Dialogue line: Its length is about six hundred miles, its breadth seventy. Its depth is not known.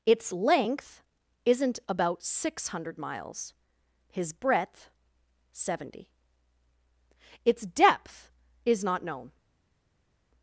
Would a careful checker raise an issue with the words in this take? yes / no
yes